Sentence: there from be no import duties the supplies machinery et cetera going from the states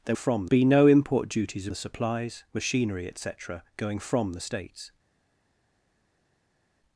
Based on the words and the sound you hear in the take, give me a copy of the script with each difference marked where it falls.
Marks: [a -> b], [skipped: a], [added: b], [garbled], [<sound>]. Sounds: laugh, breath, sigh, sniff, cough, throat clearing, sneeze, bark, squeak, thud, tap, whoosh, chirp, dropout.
there from be no import duties the supplies machinery et cetera going from the states